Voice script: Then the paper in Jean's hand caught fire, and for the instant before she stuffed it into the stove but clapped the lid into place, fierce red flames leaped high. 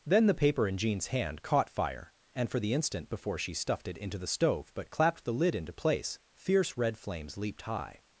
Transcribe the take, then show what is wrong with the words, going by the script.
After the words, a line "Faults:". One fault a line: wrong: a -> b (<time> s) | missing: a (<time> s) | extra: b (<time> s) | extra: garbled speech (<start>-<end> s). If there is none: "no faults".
Then the paper in Jean's hand caught fire, and for the instant before she stuffed it into the stove but clapped the lid into place, fierce red flames leaped high.
Faults:
no faults